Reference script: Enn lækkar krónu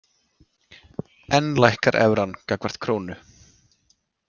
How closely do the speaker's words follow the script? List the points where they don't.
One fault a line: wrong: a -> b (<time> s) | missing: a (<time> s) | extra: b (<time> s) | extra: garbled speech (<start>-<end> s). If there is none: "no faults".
extra: evran gagnvart (2.0 s)